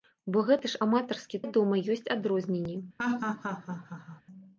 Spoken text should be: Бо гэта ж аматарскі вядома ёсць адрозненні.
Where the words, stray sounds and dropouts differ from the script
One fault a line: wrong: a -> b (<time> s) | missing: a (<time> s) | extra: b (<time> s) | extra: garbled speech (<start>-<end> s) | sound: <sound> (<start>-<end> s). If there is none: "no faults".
sound: laugh (3.0-4.2 s)